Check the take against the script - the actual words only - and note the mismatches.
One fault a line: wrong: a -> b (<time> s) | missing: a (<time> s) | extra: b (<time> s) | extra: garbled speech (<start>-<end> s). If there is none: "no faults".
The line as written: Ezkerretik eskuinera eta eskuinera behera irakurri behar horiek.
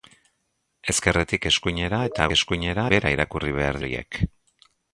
no faults